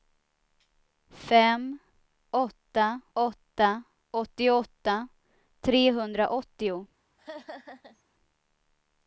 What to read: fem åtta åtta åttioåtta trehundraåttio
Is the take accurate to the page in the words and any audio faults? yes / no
no